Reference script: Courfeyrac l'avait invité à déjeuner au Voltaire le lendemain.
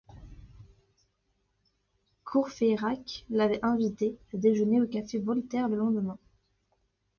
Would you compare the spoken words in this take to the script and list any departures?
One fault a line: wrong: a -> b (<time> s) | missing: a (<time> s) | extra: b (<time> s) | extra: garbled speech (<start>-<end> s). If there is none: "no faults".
extra: café (4.9 s)